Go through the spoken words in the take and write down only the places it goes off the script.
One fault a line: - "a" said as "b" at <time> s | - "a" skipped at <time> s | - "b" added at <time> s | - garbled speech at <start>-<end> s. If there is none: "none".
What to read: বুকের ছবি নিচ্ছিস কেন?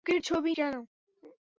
- "নিচ্ছিস" skipped at 0.5 s